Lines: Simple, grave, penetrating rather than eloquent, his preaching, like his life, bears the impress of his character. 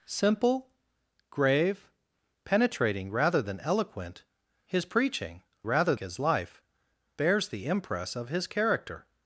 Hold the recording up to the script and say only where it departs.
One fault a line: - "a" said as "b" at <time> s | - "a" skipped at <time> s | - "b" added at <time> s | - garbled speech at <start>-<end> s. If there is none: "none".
- "like" said as "rather" at 5.6 s